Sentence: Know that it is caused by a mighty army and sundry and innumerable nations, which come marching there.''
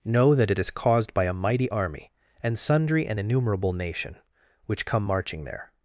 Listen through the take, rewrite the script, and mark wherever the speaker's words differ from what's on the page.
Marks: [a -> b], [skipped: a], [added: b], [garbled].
Know that it is caused by a mighty army and sundry and innumerable [nations, -> nation] which come marching there.''